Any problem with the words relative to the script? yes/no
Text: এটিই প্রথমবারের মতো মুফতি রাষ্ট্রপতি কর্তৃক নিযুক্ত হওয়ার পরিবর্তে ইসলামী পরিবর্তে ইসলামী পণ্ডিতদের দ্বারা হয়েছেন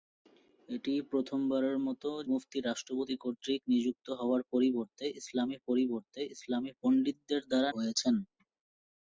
no